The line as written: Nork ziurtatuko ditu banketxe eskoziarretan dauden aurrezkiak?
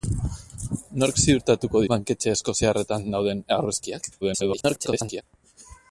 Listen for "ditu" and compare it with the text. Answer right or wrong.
wrong